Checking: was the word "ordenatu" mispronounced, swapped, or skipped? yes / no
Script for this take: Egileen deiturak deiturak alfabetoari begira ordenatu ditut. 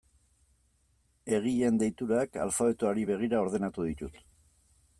no